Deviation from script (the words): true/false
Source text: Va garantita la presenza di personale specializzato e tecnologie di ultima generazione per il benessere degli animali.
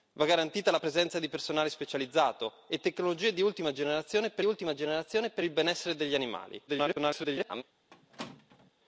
true